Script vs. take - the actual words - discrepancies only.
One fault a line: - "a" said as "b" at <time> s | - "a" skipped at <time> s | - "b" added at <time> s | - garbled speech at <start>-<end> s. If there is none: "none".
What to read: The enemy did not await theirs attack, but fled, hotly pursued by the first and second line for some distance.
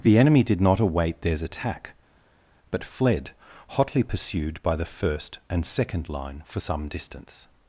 none